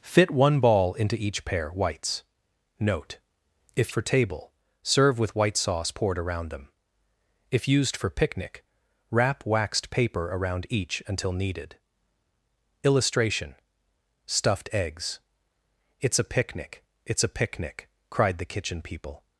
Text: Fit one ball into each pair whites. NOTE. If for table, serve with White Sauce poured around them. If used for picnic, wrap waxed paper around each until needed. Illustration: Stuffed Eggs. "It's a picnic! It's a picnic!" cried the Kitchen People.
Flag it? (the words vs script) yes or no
no